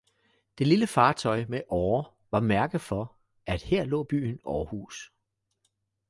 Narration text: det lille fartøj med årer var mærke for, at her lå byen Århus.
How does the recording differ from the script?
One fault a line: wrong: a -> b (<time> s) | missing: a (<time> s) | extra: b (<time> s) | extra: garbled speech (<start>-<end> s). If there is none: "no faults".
no faults